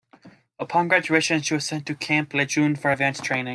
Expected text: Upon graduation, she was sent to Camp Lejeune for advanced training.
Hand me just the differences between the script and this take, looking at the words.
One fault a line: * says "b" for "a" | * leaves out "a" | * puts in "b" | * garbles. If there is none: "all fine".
all fine